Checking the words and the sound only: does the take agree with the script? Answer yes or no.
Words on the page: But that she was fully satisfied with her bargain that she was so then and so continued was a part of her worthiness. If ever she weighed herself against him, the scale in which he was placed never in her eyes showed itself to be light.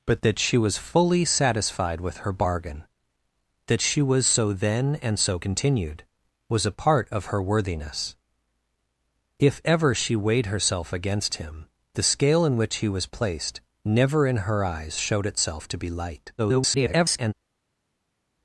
no